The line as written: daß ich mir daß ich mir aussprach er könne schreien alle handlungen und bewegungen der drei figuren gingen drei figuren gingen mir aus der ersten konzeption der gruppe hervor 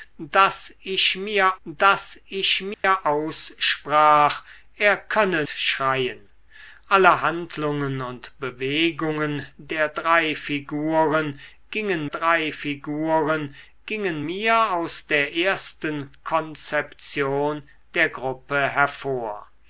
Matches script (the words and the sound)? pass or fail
fail